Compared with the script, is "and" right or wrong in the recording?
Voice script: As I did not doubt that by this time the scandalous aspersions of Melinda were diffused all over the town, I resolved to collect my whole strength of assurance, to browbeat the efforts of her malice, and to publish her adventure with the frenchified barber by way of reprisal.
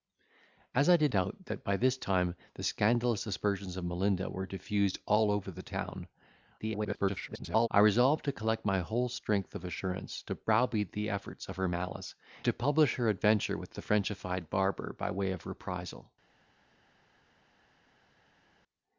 wrong